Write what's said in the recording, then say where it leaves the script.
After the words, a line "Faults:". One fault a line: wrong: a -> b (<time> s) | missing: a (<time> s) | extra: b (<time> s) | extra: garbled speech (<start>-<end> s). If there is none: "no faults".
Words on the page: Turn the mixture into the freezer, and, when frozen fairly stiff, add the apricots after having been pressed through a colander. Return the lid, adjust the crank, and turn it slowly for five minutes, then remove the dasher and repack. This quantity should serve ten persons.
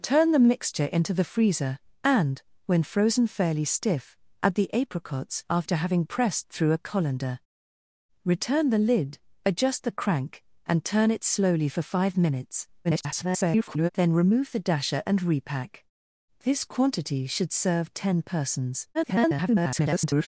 Turn the mixture into the freezer, and, when frozen fairly stiff, add the apricots after having pressed through a colander. Return the lid, adjust the crank, and turn it slowly for five minutes, [garbled] then remove the dasher and repack. This quantity should serve ten persons. [garbled]
Faults:
missing: been (6.0 s)
extra: garbled speech (12.8-13.9 s)
extra: garbled speech (18.9-20.3 s)